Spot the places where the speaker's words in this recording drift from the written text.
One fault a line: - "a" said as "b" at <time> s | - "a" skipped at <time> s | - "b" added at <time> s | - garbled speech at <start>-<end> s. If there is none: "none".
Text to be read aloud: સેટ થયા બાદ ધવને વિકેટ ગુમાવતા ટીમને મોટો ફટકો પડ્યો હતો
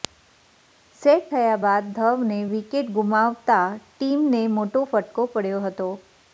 none